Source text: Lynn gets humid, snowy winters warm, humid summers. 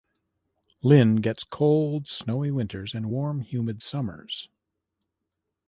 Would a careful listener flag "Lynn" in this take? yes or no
no